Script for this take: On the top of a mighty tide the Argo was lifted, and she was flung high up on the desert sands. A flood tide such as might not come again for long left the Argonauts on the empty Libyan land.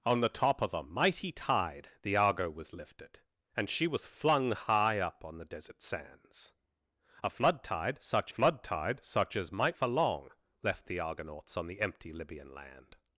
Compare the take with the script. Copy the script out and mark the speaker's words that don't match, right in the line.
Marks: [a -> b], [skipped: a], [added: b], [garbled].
On the top of a mighty tide the Argo was lifted, and she was flung high up on the desert sands. A flood tide such [as might not come again -> flood tide such as might] for long left the Argonauts on the empty Libyan land.